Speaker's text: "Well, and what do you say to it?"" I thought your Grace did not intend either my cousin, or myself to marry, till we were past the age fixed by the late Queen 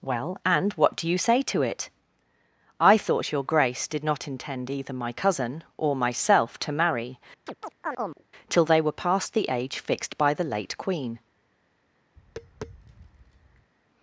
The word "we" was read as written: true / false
false